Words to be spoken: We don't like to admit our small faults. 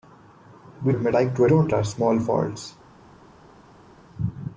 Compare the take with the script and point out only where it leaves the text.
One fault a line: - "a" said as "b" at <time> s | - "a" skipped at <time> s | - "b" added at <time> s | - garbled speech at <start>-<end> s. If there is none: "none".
- "don't" said as "admit" at 0.9 s
- "admit" said as "don't" at 1.5 s